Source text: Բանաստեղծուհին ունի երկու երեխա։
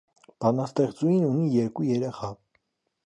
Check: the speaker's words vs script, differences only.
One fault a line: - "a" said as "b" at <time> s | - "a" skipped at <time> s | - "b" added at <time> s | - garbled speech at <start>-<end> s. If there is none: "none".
none